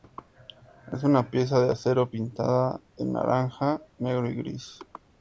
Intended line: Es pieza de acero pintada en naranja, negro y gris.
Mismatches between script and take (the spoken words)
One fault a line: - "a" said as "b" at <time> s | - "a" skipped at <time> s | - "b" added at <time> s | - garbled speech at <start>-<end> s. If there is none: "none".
- "una" added at 1.0 s